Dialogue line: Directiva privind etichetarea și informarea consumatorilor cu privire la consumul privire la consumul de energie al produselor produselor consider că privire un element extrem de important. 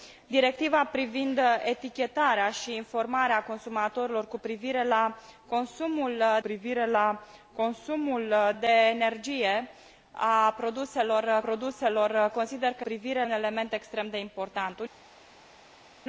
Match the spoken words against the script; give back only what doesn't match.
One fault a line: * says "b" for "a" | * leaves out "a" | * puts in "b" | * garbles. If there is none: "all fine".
all fine